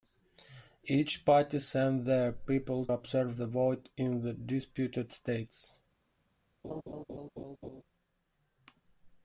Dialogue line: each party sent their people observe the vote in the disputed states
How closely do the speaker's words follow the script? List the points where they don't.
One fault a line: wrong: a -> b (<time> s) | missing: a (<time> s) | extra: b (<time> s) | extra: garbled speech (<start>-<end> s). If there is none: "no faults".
no faults